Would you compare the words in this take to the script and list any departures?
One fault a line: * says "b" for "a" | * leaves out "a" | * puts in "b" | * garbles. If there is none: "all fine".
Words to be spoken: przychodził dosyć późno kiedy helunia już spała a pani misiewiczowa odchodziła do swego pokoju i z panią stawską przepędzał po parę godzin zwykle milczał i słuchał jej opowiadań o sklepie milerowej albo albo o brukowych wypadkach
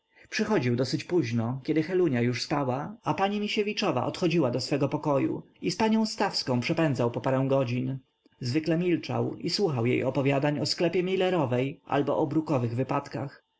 * leaves out "albo"